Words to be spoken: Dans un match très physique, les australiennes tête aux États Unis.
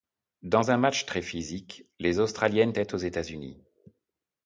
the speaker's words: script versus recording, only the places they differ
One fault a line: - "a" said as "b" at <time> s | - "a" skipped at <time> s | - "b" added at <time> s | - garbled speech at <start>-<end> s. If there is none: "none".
none